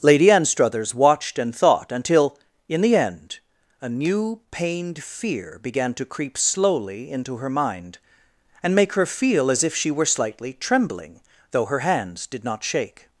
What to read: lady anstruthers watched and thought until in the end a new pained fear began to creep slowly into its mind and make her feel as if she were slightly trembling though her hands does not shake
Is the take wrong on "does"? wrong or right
wrong